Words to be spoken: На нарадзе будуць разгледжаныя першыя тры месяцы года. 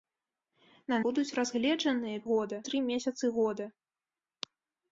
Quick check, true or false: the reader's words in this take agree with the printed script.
false